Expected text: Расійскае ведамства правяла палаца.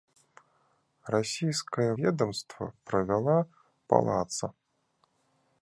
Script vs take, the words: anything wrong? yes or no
no